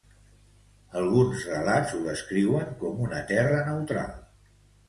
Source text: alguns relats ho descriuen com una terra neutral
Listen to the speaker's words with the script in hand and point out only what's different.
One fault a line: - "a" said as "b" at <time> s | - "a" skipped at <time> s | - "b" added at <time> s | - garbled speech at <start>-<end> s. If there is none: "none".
none